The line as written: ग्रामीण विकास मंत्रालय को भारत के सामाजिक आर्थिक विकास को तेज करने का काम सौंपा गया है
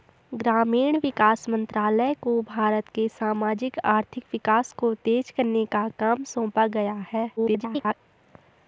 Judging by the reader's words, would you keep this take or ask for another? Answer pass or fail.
fail